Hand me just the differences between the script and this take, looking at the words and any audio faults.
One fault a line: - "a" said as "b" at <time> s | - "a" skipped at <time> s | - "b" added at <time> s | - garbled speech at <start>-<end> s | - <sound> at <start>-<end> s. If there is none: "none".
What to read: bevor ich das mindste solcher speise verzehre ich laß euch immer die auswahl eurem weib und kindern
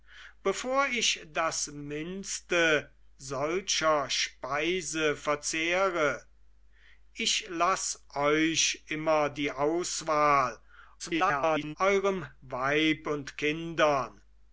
- garbled speech at 11.0-11.8 s